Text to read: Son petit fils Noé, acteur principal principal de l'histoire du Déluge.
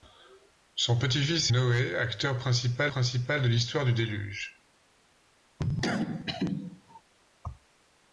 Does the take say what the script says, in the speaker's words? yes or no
yes